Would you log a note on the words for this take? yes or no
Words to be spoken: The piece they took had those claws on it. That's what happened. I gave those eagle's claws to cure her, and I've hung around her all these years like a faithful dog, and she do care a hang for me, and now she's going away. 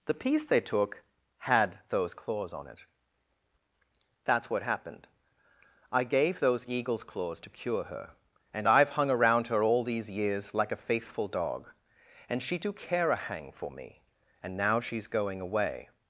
no